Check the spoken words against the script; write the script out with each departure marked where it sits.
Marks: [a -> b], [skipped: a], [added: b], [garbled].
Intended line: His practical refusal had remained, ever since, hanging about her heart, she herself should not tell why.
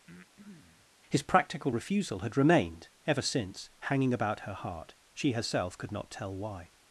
His practical refusal had remained, ever since, hanging about her heart, she herself [should -> could] not tell why.